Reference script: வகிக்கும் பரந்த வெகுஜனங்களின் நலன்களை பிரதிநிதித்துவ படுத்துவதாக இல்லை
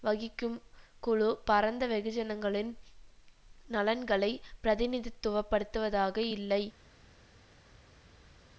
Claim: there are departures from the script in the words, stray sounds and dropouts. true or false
true